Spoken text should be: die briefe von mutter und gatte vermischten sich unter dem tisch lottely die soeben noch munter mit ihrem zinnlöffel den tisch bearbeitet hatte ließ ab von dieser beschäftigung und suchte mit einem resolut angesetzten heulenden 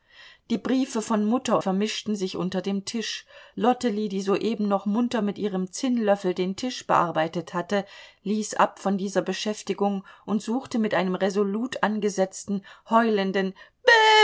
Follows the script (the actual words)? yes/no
no